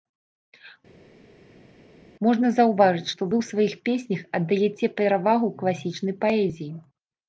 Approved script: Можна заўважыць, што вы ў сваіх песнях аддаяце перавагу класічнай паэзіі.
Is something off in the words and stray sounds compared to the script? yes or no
no